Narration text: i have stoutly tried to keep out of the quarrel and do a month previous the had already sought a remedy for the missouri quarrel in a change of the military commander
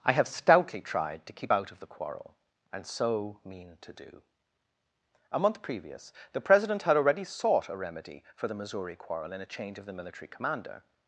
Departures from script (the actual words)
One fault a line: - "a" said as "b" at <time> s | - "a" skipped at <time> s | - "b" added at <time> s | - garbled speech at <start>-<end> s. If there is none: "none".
- "so mean to" added at 2.9 s
- "president" added at 6.4 s